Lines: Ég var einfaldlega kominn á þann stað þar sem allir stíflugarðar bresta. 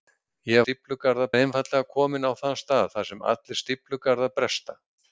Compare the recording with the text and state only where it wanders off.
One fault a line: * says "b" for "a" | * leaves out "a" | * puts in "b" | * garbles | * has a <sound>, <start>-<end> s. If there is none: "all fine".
* says "stíflugarðar" for "var"